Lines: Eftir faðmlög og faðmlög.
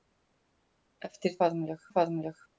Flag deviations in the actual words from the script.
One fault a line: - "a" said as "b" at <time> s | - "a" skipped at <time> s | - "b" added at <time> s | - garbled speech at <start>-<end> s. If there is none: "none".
none